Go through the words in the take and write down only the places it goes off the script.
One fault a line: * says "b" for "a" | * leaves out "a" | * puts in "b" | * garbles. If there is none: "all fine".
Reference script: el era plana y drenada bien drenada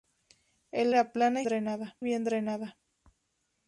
all fine